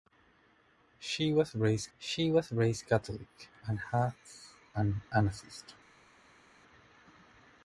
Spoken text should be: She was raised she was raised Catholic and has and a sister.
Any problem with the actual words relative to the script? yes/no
no